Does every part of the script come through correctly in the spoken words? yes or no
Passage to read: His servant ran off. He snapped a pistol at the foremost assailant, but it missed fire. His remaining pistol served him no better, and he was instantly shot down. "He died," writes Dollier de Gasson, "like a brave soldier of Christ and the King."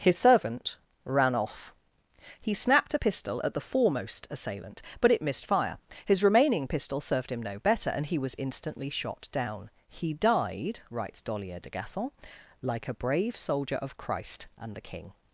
yes